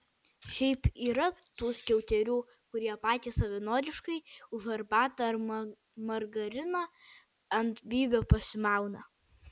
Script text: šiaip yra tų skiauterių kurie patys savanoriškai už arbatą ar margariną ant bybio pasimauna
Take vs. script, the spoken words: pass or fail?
pass